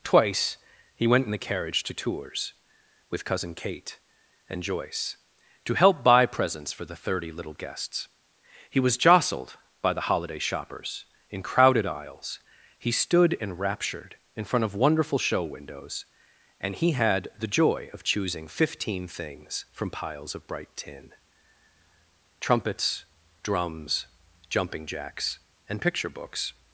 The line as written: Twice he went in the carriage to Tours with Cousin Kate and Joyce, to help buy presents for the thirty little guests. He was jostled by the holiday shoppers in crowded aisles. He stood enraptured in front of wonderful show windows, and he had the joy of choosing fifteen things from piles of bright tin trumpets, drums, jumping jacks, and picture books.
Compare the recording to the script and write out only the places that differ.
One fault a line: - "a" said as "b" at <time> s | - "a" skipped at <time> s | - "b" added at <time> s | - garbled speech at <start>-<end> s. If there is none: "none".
none